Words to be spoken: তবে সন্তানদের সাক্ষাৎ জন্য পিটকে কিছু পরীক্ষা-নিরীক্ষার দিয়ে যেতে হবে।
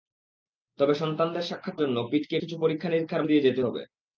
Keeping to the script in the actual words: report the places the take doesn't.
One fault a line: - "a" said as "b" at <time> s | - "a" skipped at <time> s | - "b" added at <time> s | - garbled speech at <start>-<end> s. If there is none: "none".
none